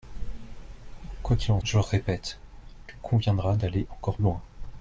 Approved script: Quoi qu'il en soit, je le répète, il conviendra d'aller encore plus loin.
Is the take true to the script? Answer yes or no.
no